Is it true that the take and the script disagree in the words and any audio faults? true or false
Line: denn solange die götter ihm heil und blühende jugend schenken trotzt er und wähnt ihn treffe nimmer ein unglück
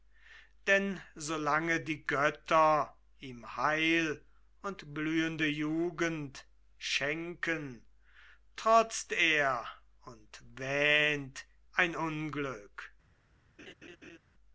true